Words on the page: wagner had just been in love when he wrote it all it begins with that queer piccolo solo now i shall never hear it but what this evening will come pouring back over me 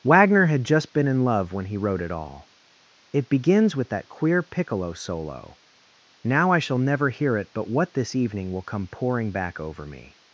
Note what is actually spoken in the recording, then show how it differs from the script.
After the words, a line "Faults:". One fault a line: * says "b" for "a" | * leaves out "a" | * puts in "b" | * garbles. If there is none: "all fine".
wagner had just been in love when he wrote it all it begins with that queer piccolo solo now i shall never hear it but what this evening will come pouring back over me
Faults:
all fine